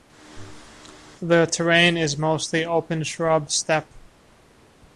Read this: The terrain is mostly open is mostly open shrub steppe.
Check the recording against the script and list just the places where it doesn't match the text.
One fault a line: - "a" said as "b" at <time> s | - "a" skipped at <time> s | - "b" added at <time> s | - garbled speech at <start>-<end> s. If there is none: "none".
- "is mostly open" skipped at 3.0 s